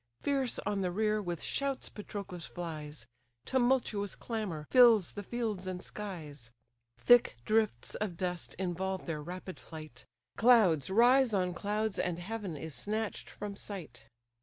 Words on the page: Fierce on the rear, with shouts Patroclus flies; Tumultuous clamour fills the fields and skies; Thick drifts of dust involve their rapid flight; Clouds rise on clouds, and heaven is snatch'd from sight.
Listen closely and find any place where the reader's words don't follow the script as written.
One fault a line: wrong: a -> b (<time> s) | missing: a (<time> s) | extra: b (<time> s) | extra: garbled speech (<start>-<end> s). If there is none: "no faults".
no faults